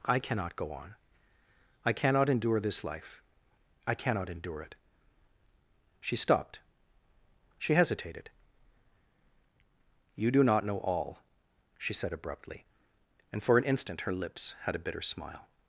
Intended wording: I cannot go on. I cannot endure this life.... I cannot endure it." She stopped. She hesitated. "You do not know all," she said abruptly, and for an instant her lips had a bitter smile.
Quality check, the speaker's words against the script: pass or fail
pass